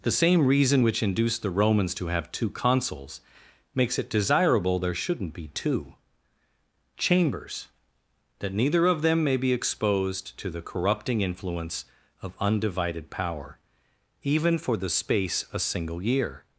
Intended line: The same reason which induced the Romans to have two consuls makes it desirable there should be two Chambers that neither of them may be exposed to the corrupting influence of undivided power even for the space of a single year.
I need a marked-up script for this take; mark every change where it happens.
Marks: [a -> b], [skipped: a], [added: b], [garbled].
The same reason which induced the Romans to have two consuls makes it desirable there [should -> shouldn't] be two Chambers that neither of them may be exposed to the corrupting influence of undivided power even for the space [skipped: of] a single year.